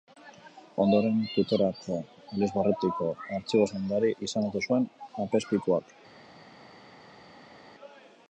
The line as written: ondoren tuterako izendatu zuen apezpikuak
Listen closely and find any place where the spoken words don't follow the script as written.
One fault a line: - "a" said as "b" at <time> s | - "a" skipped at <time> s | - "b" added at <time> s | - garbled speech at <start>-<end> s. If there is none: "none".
- "elizbarrutiko artxibo zaindari" added at 2.4 s